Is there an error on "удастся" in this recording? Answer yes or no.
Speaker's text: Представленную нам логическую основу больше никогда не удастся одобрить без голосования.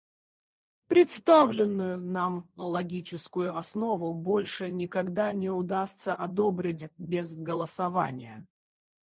no